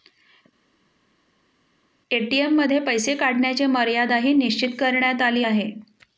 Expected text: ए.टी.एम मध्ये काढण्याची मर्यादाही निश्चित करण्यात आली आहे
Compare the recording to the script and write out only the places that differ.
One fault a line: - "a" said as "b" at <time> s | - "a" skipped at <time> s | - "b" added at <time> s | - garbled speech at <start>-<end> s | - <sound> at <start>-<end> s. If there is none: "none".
- "पैसे" added at 2.8 s